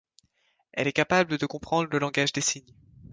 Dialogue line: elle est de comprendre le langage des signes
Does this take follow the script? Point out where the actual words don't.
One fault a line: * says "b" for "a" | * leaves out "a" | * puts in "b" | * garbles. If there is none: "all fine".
* puts in "capable"